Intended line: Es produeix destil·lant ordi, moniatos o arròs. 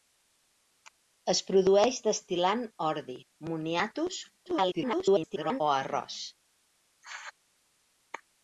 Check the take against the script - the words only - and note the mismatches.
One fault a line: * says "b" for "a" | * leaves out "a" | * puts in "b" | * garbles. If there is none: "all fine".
* garbles